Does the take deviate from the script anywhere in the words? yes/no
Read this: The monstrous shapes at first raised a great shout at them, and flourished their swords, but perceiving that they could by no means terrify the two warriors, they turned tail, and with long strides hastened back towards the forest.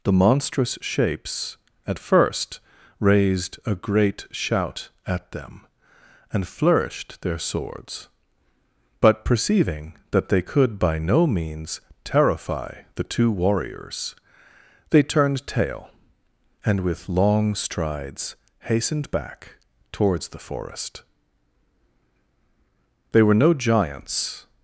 yes